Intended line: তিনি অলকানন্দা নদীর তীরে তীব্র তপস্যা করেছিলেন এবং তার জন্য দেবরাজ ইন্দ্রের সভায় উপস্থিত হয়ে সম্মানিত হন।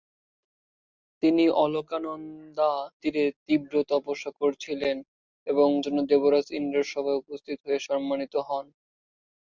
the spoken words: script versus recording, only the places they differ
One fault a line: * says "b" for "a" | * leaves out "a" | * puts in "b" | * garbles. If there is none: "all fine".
* leaves out "নদীর"
* leaves out "তার"